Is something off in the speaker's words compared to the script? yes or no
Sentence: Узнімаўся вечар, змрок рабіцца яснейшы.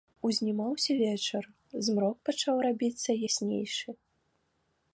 yes